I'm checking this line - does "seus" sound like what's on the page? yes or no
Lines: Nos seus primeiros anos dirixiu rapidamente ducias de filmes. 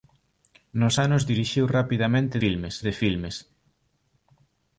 no